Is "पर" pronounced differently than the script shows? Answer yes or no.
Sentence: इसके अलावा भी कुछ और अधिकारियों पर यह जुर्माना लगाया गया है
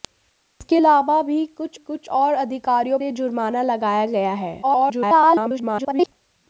yes